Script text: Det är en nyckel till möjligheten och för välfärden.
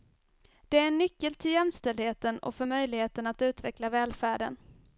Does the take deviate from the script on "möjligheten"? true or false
true